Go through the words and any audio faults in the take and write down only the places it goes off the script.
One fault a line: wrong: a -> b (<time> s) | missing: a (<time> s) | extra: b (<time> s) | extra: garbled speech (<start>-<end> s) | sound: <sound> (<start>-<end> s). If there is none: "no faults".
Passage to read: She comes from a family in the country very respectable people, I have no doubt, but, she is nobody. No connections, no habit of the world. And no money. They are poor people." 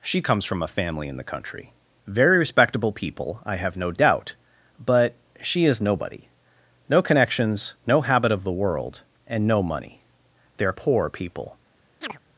sound: chirp (12.0-12.2 s)